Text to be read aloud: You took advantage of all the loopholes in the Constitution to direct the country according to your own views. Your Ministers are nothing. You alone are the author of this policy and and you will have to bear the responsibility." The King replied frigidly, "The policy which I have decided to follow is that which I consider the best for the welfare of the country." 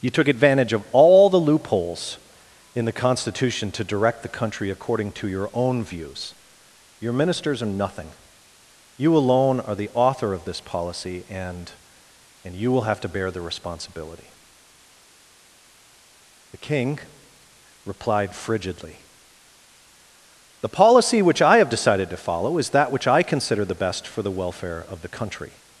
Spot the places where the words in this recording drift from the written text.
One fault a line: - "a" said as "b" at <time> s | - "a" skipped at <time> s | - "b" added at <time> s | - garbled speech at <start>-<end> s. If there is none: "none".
none